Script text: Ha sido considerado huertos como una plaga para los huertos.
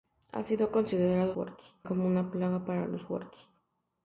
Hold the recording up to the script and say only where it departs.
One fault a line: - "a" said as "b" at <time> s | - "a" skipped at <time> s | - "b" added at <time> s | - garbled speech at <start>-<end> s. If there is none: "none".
none